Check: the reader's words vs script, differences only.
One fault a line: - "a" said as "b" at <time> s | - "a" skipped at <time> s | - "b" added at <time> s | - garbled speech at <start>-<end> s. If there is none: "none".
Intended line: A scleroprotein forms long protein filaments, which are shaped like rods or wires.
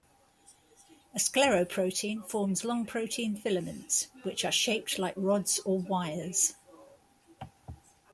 none